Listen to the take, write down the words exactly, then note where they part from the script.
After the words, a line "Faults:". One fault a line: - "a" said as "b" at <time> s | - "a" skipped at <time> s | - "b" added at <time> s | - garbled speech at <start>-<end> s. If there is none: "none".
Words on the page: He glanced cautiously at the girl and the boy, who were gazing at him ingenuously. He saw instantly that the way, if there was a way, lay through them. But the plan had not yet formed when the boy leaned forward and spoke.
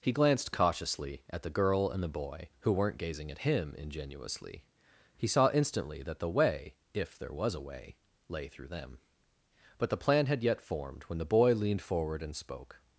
He glanced cautiously at the girl and the boy, who weren't gazing at him ingenuously. He saw instantly that the way, if there was a way, lay through them. But the plan had yet formed when the boy leaned forward and spoke.
Faults:
- "were" said as "weren't" at 2.7 s
- "not" skipped at 10.4 s